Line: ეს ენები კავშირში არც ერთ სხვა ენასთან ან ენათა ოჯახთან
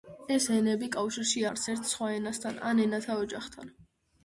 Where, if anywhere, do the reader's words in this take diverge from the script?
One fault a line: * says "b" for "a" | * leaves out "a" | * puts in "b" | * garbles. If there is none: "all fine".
all fine